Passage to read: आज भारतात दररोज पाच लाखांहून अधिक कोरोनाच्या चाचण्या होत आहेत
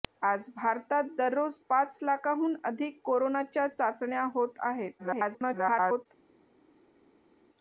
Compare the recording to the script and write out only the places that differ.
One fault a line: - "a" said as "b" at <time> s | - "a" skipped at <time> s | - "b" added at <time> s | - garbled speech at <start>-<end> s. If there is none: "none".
- garbled speech at 5.0-6.1 s